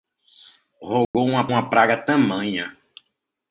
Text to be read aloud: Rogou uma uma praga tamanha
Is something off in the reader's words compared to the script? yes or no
no